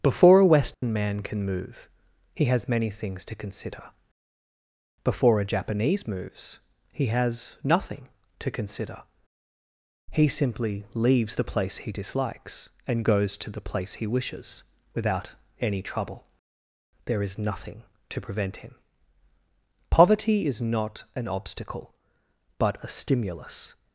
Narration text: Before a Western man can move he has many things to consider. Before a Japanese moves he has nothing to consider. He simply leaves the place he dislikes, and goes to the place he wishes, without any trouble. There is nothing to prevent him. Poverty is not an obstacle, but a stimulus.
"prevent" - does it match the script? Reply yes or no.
yes